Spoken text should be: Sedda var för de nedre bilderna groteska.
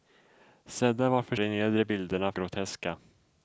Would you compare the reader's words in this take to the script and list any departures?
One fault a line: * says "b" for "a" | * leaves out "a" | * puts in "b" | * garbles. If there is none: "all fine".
all fine